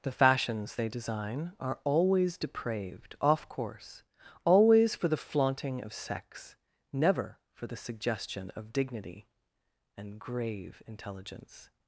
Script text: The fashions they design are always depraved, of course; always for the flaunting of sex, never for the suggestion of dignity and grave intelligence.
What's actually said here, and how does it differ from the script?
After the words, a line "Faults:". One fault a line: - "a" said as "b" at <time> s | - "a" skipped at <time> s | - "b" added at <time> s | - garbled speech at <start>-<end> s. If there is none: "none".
The fashions they design are always depraved, off course; always for the flaunting of sex, never for the suggestion of dignity and grave intelligence.
Faults:
- "of" said as "off" at 3.2 s